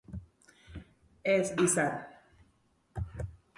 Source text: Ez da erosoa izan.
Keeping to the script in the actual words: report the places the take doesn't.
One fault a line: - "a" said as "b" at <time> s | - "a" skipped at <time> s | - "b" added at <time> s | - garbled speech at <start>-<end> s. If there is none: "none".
- "da erosoa" skipped at 1.4 s